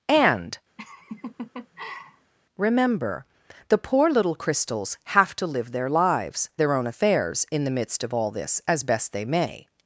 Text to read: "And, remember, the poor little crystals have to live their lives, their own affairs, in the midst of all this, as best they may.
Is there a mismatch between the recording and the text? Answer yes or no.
no